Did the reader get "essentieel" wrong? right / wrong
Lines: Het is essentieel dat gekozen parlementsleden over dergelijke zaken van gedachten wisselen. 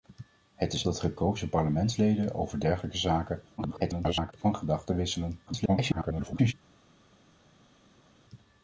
wrong